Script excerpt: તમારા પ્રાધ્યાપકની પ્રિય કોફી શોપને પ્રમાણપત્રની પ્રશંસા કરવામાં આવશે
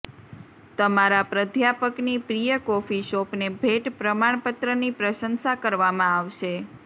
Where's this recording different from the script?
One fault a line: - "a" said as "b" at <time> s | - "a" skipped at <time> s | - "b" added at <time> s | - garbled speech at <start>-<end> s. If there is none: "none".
- "ભેટ" added at 3.6 s